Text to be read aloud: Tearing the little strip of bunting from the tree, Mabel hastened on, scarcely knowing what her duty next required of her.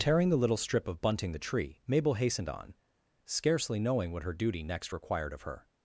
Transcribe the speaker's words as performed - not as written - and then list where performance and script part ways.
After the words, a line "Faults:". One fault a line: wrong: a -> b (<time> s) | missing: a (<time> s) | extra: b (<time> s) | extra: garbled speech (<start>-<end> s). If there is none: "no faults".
Tearing the little strip of bunting the tree, Mabel hastened on, scarcely knowing what her duty next required of her.
Faults:
missing: from (1.3 s)